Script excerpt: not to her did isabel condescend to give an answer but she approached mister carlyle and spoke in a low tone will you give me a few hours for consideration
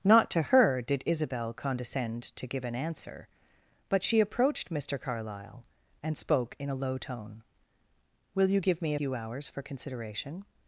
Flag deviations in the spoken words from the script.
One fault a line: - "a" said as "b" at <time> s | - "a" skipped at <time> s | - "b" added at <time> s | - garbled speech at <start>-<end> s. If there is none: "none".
- "a" skipped at 8.9 s